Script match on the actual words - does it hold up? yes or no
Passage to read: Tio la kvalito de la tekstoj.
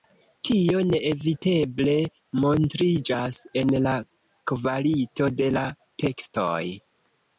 no